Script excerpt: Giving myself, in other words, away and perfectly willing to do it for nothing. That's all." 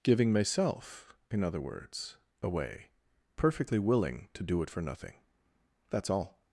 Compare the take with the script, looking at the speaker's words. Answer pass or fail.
fail